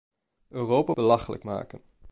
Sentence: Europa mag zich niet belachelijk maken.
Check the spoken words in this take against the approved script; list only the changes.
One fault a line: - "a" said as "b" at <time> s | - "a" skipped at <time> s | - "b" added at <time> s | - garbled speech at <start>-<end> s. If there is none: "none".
- "mag zich niet" skipped at 0.9 s